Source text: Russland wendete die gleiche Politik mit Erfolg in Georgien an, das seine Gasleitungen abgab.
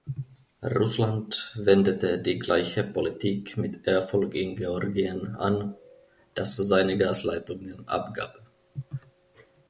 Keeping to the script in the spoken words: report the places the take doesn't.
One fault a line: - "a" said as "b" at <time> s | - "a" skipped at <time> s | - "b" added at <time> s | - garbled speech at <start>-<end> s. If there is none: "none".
none